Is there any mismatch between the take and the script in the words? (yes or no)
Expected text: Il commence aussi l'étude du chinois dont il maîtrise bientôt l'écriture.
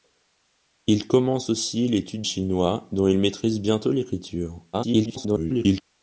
yes